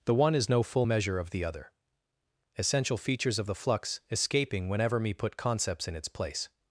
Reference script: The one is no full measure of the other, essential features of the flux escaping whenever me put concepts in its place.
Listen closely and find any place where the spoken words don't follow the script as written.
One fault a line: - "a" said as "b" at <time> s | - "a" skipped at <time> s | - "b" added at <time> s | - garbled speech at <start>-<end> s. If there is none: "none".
none